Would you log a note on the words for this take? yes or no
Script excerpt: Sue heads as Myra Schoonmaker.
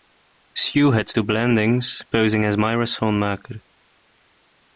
yes